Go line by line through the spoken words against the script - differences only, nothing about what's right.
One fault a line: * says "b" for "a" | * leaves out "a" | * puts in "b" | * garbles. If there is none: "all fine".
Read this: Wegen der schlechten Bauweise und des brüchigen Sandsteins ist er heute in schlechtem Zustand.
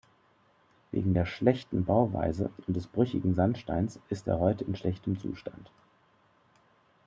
all fine